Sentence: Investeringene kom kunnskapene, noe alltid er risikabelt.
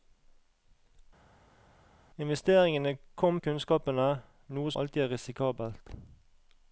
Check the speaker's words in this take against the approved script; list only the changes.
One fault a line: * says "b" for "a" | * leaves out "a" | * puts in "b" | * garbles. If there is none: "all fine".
all fine